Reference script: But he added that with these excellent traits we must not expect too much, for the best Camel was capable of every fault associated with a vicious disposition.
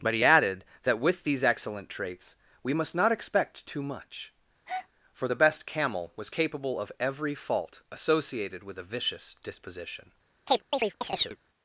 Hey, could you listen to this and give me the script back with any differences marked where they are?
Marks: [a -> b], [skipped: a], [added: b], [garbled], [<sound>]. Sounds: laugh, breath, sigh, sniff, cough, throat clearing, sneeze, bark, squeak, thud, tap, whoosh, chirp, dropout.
But he added that with these excellent traits we must not expect too much, [breath] for the best Camel was capable of every fault associated with a vicious disposition. [chirp]